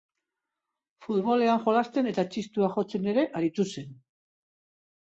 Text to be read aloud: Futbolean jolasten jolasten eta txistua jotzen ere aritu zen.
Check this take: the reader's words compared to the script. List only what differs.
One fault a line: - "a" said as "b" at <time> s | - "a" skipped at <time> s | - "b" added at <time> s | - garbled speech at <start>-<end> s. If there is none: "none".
- "jolasten" skipped at 2.1 s